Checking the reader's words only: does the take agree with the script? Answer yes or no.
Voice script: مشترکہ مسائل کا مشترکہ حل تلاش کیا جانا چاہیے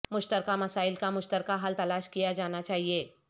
yes